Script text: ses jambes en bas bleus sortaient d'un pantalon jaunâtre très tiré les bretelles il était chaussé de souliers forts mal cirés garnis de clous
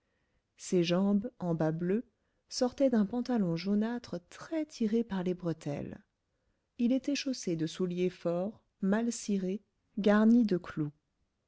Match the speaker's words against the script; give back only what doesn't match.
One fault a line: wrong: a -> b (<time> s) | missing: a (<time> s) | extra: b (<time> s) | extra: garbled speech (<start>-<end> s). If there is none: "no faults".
extra: par (5.0 s)